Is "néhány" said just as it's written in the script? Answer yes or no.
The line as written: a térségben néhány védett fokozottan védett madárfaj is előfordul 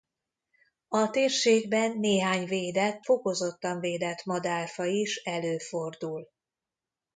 yes